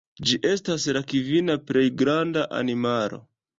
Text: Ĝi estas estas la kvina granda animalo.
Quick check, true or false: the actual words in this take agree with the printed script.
false